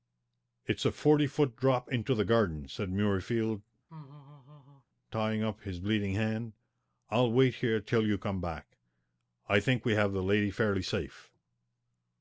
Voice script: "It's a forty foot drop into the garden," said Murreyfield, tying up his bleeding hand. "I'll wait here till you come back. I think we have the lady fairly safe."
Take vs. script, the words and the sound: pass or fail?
fail